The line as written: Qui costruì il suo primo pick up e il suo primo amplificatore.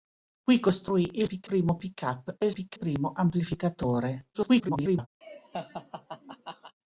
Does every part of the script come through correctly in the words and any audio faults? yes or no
no